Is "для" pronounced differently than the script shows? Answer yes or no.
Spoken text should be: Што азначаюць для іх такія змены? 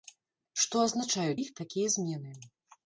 yes